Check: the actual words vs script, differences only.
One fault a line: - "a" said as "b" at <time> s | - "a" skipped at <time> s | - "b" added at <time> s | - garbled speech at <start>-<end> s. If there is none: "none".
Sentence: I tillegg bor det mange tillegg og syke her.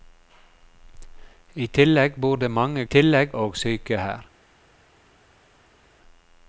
none